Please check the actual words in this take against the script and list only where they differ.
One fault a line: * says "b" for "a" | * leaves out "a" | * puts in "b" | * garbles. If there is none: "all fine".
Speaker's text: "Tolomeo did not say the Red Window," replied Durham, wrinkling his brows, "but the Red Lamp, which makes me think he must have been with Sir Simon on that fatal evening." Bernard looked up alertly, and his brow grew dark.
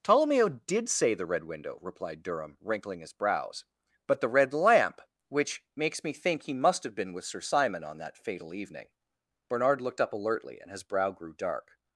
* leaves out "not"